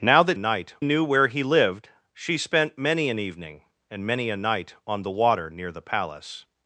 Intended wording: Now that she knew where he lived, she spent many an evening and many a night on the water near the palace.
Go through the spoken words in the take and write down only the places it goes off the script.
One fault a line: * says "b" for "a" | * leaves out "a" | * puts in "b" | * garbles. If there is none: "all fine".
* says "night" for "she"